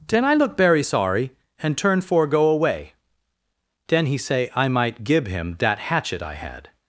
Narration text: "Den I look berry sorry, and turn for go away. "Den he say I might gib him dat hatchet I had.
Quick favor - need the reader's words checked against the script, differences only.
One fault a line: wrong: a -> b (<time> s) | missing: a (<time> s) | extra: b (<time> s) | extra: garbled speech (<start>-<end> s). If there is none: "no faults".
wrong: berry -> very (0.6 s)